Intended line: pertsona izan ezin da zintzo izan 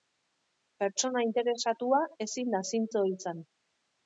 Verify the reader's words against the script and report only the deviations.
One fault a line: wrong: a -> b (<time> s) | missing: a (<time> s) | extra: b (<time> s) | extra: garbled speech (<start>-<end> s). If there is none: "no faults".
wrong: izan -> interesatua (1.2 s)